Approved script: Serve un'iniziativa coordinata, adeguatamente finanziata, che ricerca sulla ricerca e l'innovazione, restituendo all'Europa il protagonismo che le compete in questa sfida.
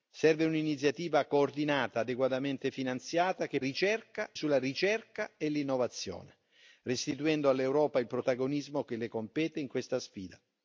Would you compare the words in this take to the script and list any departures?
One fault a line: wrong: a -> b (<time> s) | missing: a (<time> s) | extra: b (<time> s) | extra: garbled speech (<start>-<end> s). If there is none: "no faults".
no faults